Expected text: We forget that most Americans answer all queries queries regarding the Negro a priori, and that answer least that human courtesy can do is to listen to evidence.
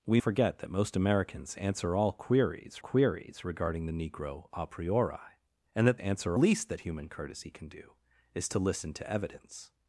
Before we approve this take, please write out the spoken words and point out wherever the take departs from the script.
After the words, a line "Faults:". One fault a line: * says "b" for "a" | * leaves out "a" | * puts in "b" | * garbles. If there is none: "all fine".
We forget that most Americans answer all queries queries regarding the Negro a priori, and that answer least that human courtesy can do is to listen to evidence.
Faults:
all fine